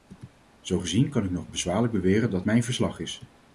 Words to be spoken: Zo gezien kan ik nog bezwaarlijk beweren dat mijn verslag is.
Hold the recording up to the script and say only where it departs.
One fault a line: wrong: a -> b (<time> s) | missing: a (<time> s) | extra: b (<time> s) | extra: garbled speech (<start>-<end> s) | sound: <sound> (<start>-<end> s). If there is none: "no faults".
no faults